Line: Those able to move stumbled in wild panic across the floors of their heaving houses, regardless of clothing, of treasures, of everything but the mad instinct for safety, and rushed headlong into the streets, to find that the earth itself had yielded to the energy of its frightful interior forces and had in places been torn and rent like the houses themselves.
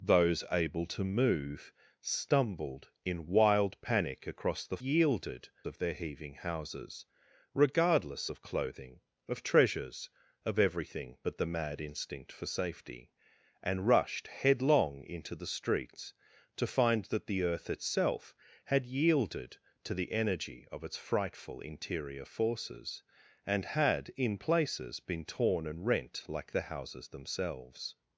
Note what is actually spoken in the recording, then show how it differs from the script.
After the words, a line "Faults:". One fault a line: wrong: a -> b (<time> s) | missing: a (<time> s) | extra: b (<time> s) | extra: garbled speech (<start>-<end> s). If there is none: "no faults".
Those able to move stumbled in wild panic across the yielded of their heaving houses, regardless of clothing, of treasures, of everything but the mad instinct for safety, and rushed headlong into the streets, to find that the earth itself had yielded to the energy of its frightful interior forces and had in places been torn and rent like the houses themselves.
Faults:
wrong: floors -> yielded (4.8 s)